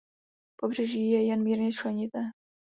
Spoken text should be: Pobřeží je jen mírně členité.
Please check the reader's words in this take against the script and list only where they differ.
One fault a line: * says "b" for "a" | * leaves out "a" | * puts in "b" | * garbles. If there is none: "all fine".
all fine